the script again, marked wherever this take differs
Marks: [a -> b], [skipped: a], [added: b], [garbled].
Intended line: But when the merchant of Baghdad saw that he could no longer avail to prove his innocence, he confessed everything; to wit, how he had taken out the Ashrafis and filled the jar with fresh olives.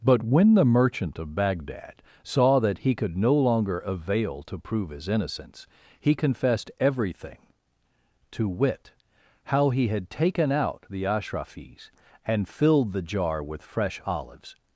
But when the merchant of Baghdad saw that he could no longer avail to prove his innocence, he confessed everything; to wit, how he had taken out the Ashrafis and filled the jar with fresh olives.